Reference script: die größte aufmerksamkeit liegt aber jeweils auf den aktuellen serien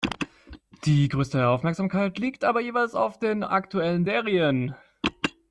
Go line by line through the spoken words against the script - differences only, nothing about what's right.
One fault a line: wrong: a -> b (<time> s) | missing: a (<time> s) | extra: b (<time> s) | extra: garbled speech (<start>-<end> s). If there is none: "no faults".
no faults